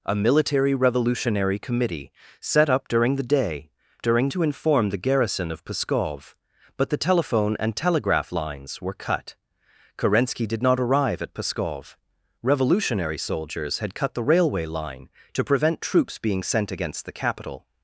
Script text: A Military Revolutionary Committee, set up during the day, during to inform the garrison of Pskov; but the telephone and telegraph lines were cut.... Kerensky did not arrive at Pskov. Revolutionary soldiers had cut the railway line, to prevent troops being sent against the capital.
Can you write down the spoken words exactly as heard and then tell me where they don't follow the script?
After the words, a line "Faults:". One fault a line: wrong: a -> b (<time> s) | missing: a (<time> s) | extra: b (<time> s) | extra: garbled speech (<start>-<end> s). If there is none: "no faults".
A Military Revolutionary Committee, set up during the day, during to inform the garrison of Pskov; but the telephone and telegraph lines were cut.... Kerensky did not arrive at Pskov. Revolutionary soldiers had cut the railway line, to prevent troops being sent against the capital.
Faults:
no faults